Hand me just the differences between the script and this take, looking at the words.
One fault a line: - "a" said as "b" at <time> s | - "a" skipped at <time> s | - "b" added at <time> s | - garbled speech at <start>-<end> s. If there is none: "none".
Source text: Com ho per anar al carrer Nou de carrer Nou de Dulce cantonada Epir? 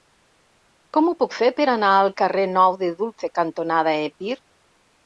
- "puc fer" added at 1.2 s
- "carrer Nou de" skipped at 2.9 s